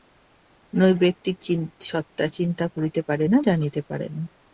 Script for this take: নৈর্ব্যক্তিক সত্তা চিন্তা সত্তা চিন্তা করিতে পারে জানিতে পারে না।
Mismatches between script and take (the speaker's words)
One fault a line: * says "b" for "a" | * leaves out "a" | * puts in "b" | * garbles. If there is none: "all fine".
* leaves out "সত্তা চিন্তা"
* puts in "না"